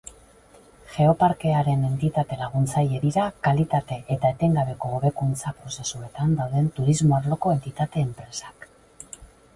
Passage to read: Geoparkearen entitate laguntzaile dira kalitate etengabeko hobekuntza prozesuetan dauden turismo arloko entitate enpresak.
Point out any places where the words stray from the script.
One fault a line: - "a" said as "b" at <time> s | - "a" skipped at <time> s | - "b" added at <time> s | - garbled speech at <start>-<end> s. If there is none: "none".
- "eta" added at 4.2 s